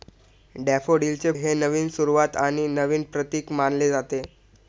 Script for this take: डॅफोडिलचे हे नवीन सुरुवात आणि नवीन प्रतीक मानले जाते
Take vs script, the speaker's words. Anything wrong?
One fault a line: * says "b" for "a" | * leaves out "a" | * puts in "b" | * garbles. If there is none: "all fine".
all fine